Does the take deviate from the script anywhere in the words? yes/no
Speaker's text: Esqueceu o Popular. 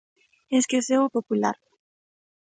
no